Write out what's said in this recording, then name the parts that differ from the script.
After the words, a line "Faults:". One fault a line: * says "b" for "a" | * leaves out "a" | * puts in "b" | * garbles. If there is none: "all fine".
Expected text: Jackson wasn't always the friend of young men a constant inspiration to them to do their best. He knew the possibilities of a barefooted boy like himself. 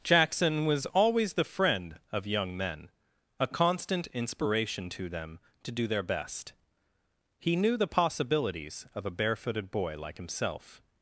Jackson was always the friend of young men a constant inspiration to them to do their best. He knew the possibilities of a barefooted boy like himself.
Faults:
* says "was" for "wasn't"